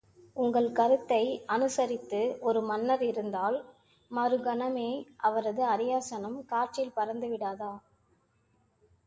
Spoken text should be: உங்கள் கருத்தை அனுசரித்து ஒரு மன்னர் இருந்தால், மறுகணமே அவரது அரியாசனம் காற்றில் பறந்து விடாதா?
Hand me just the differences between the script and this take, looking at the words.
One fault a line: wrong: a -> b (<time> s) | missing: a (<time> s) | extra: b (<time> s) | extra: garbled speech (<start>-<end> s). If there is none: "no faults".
no faults